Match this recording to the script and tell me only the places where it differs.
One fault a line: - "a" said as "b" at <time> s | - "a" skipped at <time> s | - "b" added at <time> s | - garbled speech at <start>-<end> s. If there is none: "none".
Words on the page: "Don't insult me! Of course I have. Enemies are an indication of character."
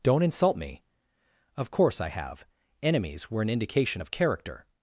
- "are" said as "were" at 3.3 s